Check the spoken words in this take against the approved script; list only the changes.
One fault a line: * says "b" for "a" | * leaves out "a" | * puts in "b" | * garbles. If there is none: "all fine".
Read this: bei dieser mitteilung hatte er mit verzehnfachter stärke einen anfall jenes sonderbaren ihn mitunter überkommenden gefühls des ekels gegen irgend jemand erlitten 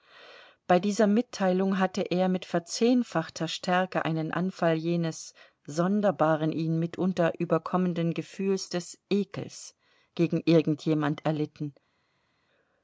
all fine